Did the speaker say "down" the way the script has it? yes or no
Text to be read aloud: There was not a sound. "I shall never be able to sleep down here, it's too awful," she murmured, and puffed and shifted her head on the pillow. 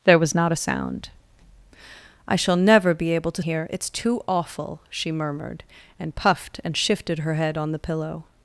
no